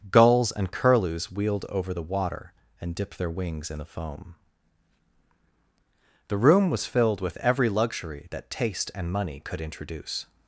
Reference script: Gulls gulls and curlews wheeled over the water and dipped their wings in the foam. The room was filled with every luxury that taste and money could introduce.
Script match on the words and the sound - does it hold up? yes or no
no